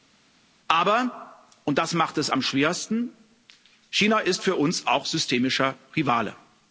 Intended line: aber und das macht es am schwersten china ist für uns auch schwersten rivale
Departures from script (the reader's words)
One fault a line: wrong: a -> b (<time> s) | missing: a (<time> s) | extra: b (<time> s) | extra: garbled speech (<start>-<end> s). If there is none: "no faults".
wrong: schwersten -> systemischer (5.0 s)